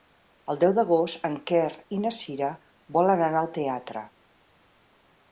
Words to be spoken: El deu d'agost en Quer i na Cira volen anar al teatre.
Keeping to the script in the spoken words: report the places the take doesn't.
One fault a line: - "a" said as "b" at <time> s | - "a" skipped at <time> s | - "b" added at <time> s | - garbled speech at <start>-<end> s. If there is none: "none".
none